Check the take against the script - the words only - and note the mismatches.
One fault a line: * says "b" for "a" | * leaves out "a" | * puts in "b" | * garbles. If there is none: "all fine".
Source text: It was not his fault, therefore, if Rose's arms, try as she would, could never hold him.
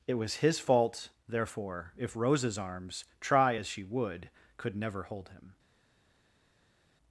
* leaves out "not"